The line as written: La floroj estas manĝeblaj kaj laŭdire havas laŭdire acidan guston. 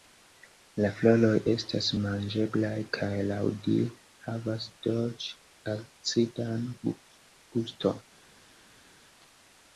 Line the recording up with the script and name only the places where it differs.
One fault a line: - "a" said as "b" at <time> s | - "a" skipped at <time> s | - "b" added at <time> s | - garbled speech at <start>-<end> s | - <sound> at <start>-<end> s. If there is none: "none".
- "laŭdire" said as "dolĉ" at 4.9 s